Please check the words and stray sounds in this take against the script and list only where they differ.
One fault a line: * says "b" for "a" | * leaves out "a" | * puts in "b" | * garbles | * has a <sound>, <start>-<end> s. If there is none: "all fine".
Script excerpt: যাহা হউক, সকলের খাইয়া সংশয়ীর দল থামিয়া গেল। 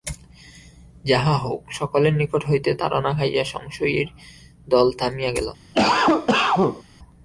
* puts in "নিকট হইতে তাড়না"
* has a cough, 5.7-6.8 s